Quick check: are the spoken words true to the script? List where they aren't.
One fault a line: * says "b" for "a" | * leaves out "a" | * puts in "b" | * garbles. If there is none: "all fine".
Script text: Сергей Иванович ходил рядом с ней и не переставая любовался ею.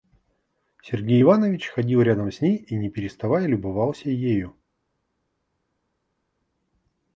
all fine